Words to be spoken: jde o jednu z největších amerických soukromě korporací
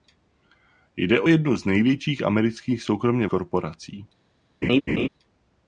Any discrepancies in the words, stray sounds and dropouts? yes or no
yes